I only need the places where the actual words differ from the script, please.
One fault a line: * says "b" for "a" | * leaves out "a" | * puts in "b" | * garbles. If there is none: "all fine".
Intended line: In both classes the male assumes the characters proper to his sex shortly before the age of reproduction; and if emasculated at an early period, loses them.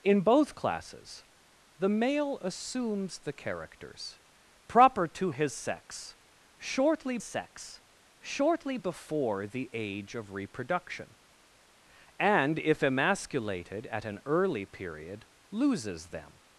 * puts in "sex shortly"